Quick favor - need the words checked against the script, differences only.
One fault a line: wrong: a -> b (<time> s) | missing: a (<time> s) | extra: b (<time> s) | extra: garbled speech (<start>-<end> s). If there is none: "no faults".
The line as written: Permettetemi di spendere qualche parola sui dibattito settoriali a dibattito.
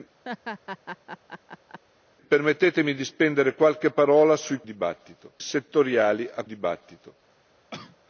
no faults